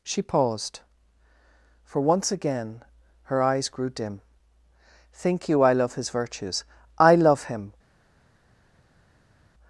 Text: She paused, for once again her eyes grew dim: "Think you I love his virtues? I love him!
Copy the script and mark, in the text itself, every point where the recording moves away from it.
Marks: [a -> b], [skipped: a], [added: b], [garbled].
She paused, for once again her eyes grew dim: "Think you I love his virtues? I love him!